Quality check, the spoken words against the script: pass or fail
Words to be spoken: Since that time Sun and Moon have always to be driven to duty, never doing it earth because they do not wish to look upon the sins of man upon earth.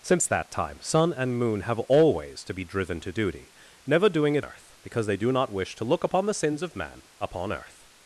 pass